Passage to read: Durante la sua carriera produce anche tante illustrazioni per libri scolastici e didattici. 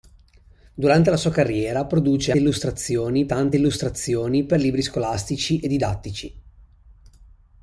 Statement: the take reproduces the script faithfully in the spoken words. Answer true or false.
false